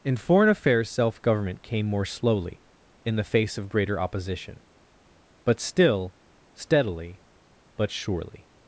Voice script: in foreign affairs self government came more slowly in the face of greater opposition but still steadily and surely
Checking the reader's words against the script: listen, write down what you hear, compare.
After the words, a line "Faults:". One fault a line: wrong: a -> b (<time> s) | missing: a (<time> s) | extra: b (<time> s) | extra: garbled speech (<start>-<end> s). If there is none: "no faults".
in foreign affairs self government came more slowly in the face of greater opposition but still steadily but surely
Faults:
wrong: and -> but (7.8 s)